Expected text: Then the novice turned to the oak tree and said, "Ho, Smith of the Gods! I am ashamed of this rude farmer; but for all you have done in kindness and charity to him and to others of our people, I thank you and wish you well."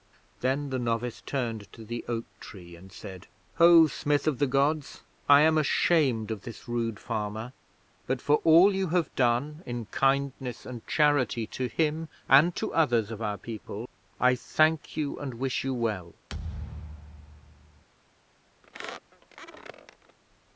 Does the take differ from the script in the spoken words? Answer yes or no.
no